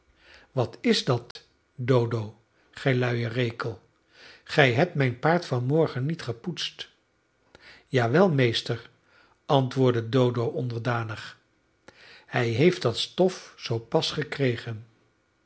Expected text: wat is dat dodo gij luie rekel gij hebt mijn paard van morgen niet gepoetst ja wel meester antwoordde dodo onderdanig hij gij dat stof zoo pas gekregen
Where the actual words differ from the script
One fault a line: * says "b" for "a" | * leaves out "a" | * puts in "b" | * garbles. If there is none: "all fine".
* says "heeft" for "gij"